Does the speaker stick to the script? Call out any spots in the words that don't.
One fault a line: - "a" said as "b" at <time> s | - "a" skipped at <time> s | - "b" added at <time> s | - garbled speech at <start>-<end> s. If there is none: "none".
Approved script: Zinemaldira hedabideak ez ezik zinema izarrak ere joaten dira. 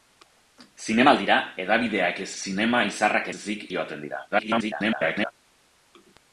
- "ezik" skipped at 2.3 s
- "ere" said as "ezik" at 3.4 s
- garbled speech at 4.3-5.3 s